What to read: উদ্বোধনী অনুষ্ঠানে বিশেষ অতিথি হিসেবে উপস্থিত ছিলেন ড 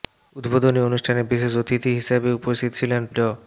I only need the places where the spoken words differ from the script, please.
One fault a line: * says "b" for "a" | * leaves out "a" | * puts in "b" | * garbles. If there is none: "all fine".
all fine